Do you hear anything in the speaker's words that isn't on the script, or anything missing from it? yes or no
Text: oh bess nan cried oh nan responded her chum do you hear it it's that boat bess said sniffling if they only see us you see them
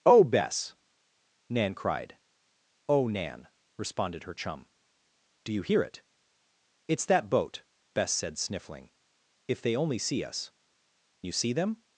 no